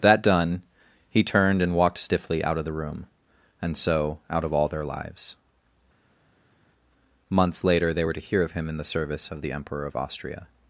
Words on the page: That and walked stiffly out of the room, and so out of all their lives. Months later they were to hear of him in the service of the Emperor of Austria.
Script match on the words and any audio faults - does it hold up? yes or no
no